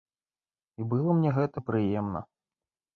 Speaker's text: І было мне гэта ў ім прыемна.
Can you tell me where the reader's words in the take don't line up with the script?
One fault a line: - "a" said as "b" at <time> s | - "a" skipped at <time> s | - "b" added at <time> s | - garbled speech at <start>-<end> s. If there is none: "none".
- "ў" skipped at 1.5 s